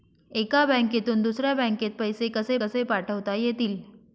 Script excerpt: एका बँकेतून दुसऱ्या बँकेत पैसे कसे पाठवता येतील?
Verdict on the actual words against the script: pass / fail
fail